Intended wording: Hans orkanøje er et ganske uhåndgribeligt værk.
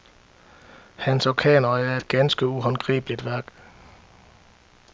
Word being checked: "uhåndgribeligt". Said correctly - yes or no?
yes